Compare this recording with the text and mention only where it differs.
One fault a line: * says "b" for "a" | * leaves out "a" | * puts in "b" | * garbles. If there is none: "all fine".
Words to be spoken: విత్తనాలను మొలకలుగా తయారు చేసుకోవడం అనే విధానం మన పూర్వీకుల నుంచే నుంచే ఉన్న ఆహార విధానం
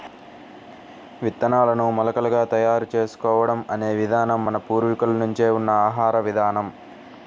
* leaves out "నుంచే"